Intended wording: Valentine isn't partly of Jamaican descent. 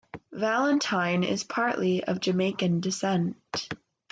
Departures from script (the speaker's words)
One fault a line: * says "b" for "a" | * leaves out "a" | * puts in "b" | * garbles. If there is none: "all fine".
* says "is" for "isn't"